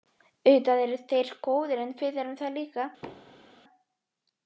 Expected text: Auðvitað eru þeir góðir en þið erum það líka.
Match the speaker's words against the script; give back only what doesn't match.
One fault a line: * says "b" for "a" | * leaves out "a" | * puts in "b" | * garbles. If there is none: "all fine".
* says "við" for "þið"